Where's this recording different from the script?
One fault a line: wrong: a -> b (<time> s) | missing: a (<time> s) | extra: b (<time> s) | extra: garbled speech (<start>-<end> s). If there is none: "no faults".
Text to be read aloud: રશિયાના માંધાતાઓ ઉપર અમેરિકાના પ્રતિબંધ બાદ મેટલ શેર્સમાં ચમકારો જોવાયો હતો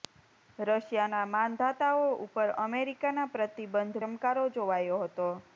missing: બાદ મેટલ શેર્સમાં (4.0 s)